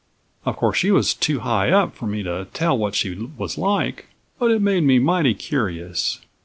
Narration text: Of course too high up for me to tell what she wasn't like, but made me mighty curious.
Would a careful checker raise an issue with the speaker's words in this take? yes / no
yes